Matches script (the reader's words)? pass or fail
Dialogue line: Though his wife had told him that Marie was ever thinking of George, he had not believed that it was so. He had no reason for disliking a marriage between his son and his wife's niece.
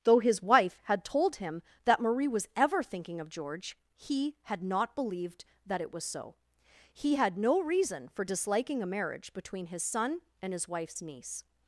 pass